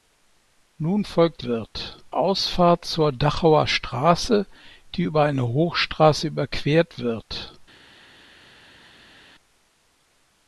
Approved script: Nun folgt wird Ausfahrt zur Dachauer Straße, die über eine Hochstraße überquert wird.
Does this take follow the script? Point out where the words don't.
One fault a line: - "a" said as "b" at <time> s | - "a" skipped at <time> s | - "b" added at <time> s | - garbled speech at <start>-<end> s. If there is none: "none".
none